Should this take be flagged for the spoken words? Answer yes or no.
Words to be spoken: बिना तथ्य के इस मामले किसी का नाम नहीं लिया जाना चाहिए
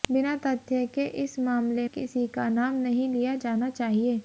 no